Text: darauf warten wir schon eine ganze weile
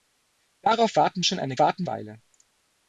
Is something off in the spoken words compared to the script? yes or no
yes